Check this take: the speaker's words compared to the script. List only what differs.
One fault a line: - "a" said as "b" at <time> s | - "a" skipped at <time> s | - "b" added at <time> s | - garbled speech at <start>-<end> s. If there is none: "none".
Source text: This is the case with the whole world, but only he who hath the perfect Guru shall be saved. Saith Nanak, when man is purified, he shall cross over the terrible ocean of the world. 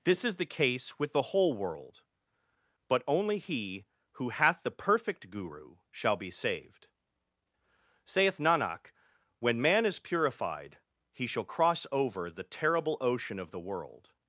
none